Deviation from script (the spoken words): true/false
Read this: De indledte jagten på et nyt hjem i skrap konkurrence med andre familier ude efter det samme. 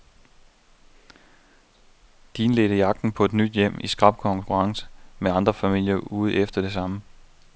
false